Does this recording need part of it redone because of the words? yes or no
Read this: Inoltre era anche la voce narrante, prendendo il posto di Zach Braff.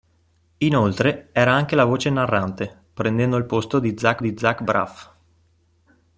yes